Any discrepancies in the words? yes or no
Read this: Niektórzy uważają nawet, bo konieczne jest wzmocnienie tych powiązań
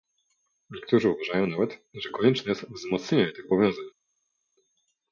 yes